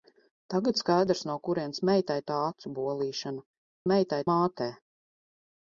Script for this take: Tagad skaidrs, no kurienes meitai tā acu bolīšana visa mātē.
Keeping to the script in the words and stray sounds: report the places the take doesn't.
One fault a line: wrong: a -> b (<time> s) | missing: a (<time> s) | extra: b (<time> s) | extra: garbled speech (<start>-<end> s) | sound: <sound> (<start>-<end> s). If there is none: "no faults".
wrong: visa -> meitai (3.9 s)